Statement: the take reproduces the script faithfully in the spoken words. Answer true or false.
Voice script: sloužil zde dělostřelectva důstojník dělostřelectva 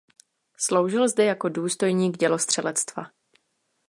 false